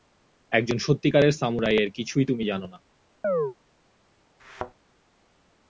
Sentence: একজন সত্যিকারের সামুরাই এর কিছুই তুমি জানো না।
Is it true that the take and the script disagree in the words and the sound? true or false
true